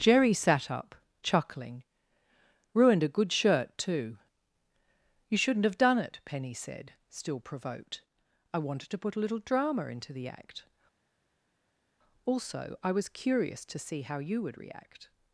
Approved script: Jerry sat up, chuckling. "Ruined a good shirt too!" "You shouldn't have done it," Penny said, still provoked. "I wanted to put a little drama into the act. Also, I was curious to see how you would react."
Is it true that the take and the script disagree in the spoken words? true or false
false